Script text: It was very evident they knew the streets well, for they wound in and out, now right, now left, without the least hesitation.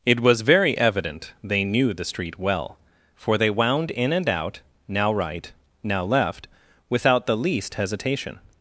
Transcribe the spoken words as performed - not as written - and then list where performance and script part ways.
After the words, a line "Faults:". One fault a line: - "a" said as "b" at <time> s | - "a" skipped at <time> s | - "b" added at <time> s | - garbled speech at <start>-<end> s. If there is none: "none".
It was very evident they knew the street well, for they wound in and out, now right, now left, without the least hesitation.
Faults:
- "streets" said as "street" at 2.0 s